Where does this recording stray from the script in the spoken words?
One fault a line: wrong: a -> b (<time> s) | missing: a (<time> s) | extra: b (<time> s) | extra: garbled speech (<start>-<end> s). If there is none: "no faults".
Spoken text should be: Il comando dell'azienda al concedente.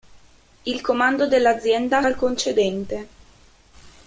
no faults